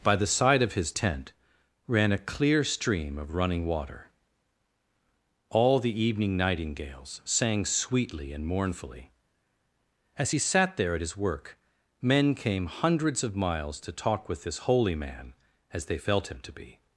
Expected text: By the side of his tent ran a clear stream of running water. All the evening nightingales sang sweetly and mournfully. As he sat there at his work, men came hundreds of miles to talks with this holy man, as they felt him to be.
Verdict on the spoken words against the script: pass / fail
fail